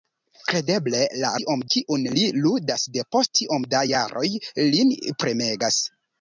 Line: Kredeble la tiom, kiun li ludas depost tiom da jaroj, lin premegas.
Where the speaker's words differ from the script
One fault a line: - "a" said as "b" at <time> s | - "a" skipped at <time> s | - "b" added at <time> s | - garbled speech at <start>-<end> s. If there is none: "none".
none